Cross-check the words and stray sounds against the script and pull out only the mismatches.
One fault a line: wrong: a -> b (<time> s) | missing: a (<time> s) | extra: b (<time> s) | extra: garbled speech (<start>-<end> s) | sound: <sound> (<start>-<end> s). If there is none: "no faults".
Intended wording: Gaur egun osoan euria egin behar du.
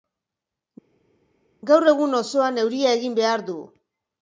no faults